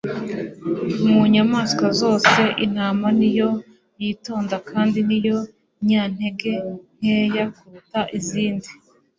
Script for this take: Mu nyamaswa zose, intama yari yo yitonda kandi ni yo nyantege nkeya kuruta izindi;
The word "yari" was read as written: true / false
false